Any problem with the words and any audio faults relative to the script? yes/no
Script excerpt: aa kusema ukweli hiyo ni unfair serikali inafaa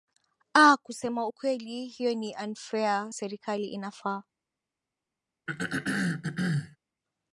yes